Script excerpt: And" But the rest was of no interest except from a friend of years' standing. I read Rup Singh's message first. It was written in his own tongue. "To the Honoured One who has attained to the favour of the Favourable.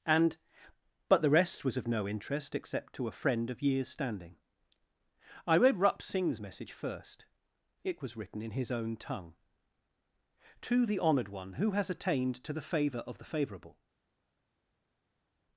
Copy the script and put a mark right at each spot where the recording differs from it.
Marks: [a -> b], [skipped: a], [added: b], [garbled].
And" But the rest was of no interest except [from -> to] a friend of years' standing. I read Rup Singh's message first. It was written in his own tongue. "To the Honoured One who has attained to the favour of the Favourable.